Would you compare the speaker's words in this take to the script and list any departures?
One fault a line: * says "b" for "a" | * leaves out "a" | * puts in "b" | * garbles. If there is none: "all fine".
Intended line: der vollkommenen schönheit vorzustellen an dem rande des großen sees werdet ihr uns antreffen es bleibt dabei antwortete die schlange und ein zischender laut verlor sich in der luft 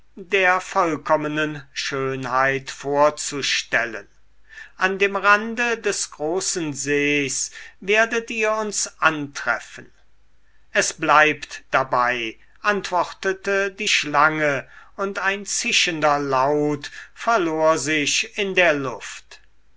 all fine